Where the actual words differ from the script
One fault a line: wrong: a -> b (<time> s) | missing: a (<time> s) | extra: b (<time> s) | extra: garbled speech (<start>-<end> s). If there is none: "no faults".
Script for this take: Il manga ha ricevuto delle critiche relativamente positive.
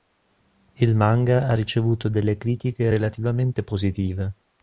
no faults